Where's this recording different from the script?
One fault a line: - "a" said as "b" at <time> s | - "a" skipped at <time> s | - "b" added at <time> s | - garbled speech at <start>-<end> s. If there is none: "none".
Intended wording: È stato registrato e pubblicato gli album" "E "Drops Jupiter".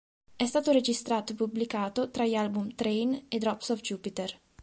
- "tra" added at 2.1 s
- "Train" added at 2.7 s
- "of" added at 3.7 s